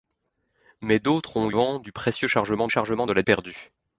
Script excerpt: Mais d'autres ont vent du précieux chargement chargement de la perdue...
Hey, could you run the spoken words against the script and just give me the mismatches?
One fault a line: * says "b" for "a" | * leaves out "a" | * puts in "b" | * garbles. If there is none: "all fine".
all fine